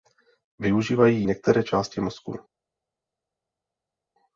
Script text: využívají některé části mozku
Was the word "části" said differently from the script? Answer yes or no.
no